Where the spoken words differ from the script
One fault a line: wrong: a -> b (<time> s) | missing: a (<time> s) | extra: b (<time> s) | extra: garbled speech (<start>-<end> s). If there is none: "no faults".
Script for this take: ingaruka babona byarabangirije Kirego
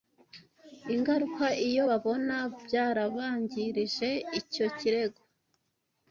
extra: iyo (1.7 s)
extra: Icyo (4.4 s)